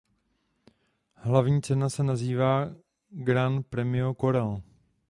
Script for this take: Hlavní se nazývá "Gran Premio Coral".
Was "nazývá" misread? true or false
false